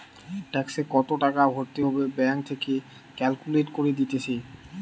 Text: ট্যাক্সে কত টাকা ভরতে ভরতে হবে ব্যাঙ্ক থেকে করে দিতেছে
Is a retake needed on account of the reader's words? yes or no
yes